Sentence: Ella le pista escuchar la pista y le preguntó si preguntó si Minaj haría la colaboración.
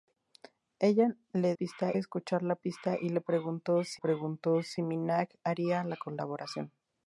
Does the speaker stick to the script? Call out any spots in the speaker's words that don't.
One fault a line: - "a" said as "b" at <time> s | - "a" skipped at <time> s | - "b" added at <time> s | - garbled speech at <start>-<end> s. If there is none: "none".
none